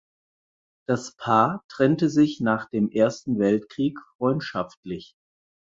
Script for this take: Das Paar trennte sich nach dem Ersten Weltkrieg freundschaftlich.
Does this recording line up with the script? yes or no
yes